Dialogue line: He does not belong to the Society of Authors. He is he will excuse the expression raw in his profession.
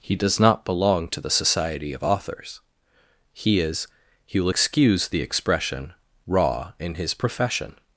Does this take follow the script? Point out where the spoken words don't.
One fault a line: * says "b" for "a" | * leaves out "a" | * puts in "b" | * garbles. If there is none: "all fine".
all fine